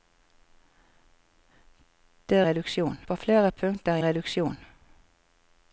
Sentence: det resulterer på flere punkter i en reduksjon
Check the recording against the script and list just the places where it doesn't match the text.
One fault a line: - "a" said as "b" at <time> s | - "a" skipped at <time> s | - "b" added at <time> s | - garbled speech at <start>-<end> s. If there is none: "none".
- "resulterer" said as "reduksjon" at 2.4 s
- "en" skipped at 4.0 s